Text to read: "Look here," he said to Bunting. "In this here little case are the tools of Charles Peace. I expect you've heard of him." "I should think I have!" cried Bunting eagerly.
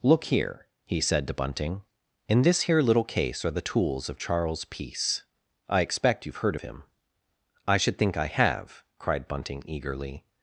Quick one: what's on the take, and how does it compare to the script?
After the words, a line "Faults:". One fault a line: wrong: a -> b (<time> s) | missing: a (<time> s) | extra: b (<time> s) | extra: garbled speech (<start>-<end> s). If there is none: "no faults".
"Look here," he said to Bunting. "In this here little case are the tools of Charles Peace. I expect you've heard him." "I should think I have!" cried Bunting eagerly.
Faults:
missing: of (6.5 s)